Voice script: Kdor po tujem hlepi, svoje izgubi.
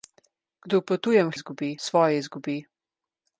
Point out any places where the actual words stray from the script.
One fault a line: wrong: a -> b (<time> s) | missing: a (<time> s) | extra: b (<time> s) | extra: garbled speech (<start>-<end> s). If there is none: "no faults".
wrong: hlepi -> izgubi (1.3 s)